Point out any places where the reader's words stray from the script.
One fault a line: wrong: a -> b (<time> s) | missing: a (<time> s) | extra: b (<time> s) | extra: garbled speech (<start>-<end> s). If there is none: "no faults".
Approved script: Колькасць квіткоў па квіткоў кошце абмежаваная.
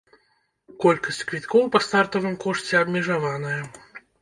wrong: квіткоў -> стартавым (1.9 s)